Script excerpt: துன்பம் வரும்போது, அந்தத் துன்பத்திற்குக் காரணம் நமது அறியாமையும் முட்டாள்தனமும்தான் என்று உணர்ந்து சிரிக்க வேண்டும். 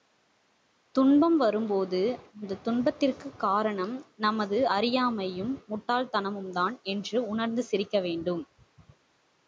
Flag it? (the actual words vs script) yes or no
no